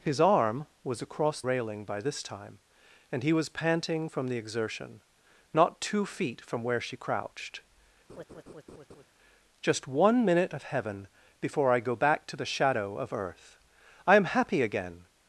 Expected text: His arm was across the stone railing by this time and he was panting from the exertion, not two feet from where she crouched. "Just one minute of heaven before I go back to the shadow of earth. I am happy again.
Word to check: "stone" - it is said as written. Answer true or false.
false